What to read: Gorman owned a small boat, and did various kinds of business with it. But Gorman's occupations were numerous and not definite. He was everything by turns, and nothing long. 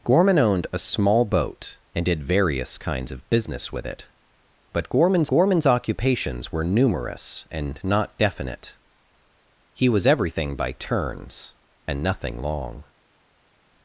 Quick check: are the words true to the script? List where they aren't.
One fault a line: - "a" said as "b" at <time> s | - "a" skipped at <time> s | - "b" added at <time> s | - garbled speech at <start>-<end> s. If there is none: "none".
- "Gorman's" added at 5.3 s